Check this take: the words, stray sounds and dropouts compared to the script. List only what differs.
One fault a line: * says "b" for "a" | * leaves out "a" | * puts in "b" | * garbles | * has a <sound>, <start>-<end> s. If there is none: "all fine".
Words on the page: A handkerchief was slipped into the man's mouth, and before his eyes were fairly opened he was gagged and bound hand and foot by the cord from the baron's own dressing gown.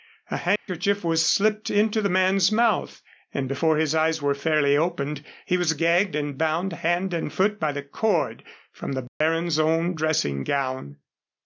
* has a dropout, 0.6-0.7 s
* has a dropout, 9.1-9.2 s